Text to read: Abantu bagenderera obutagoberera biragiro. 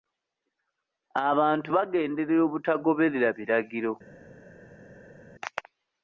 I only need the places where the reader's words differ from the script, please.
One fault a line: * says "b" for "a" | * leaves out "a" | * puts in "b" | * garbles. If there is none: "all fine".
all fine